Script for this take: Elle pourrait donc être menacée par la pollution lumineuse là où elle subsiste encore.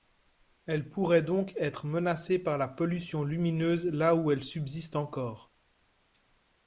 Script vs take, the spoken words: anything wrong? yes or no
no